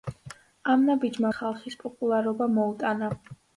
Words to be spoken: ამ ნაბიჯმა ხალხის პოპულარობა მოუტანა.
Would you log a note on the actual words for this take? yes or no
no